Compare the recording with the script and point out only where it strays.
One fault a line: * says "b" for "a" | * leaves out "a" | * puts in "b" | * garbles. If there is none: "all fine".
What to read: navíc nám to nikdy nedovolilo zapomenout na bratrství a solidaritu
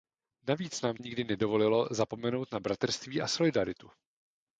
* leaves out "to"